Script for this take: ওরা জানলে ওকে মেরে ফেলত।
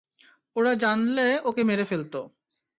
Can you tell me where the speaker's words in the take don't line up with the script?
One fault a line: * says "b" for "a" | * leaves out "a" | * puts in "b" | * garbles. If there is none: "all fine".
all fine